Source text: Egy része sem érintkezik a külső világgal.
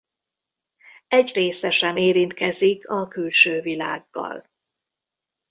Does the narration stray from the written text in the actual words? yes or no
no